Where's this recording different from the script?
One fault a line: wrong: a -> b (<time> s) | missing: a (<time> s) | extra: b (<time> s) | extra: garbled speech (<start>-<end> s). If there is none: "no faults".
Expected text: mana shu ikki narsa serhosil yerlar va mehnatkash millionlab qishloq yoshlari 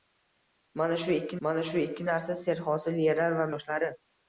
extra: mana shu ikki (1.5 s)
missing: mehnatkash millionlab qishloq (3.5 s)